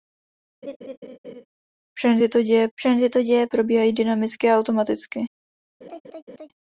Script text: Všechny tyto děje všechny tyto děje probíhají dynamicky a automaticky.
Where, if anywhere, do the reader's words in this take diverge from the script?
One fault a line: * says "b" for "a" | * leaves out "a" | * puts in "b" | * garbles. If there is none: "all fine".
all fine